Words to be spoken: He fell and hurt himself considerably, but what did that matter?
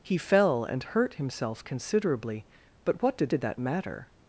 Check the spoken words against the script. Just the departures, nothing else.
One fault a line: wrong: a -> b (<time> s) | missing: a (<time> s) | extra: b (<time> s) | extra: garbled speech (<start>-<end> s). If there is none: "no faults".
extra: did (3.3 s)